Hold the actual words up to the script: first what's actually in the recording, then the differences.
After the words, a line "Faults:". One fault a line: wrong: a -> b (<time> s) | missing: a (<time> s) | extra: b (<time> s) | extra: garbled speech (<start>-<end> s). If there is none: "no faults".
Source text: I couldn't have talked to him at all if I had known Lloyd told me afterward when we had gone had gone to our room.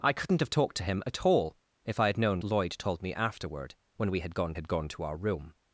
I couldn't have talked to him at all if I had known Lloyd told me afterward when we had gone had gone to our room.
Faults:
no faults